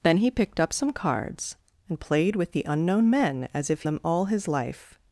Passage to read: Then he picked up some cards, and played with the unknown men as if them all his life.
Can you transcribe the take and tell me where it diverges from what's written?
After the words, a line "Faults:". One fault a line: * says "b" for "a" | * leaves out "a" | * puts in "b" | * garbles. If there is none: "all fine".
Then he picked up some cards, and played with the unknown men as if them all his life.
Faults:
all fine